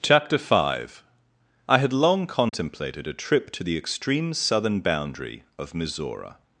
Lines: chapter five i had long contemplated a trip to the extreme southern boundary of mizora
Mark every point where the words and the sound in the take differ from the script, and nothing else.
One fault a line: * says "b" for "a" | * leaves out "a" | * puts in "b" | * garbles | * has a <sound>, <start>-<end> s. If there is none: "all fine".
* has a dropout, 2.5-2.5 s